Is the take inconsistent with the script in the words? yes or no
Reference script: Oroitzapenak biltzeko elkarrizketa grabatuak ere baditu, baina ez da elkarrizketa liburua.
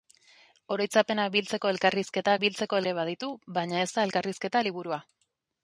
yes